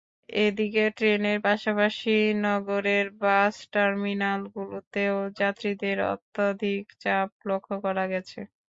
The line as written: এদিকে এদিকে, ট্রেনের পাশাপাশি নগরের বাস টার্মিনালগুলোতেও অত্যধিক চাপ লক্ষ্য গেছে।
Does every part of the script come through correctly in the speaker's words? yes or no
no